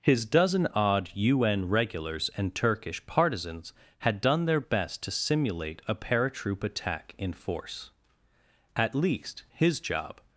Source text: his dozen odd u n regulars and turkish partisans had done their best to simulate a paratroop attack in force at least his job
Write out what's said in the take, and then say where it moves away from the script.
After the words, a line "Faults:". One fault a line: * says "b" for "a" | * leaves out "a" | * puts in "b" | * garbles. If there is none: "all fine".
his dozen odd u n regulars and turkish partisans had done their best to simulate a paratroop attack in force at least his job
Faults:
all fine